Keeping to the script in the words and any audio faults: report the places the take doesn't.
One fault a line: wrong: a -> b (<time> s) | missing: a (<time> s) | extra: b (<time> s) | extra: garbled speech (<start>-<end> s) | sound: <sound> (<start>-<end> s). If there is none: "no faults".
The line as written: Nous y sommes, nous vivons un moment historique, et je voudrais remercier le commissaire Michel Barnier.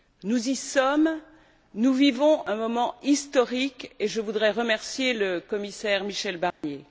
sound: dropout (6.5-6.6 s)